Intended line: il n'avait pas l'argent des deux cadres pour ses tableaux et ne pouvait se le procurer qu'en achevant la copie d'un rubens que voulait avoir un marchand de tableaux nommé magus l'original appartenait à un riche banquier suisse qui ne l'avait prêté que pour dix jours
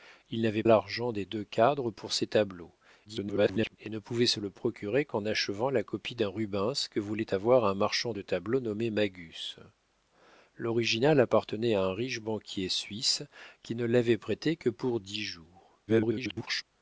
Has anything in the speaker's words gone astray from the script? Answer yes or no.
yes